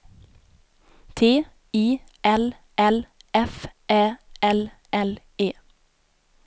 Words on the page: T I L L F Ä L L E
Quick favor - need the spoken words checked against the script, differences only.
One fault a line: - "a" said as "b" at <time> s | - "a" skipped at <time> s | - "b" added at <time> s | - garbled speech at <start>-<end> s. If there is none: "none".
none